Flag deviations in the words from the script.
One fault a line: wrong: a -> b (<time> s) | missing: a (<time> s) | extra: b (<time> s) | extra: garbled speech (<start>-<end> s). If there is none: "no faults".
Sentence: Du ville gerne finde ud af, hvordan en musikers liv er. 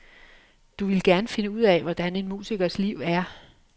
no faults